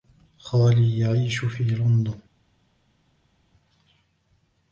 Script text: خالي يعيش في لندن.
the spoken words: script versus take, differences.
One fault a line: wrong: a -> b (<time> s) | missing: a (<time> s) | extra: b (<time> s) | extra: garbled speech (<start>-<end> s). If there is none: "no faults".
no faults